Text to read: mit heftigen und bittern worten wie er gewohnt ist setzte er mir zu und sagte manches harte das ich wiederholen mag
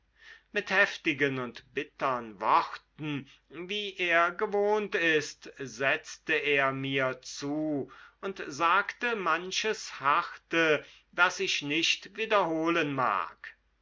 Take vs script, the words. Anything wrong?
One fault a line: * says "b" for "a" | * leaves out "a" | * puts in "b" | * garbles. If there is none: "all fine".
* puts in "nicht"